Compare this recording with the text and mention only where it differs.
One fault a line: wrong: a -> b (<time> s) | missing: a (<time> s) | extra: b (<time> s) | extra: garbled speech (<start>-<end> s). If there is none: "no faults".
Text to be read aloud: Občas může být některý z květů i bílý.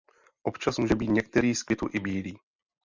no faults